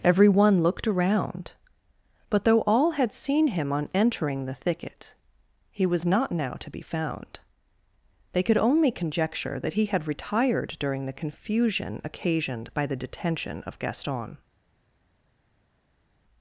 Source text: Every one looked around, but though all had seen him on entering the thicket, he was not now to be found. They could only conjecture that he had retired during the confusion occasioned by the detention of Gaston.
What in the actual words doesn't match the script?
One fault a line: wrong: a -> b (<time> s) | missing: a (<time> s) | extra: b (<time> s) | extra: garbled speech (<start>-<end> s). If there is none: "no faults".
no faults